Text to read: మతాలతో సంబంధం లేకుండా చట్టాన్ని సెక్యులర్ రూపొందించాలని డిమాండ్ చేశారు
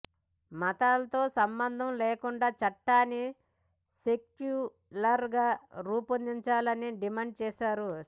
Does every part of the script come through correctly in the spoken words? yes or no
no